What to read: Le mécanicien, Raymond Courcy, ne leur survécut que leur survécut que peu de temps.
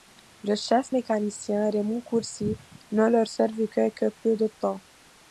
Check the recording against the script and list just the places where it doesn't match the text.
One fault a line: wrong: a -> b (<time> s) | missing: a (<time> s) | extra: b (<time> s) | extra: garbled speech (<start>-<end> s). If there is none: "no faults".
extra: chef (0.6 s)
missing: leur survécut que (4.1 s)